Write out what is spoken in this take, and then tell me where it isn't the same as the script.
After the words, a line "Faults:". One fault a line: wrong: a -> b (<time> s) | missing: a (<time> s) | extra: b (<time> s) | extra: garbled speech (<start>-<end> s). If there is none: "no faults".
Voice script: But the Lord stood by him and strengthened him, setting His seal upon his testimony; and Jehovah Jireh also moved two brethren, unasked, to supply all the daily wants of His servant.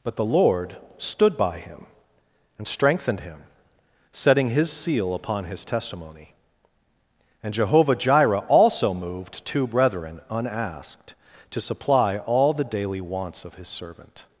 But the Lord stood by him and strengthened him, setting His seal upon his testimony; and Jehovah Jireh also moved two brethren, unasked, to supply all the daily wants of His servant.
Faults:
no faults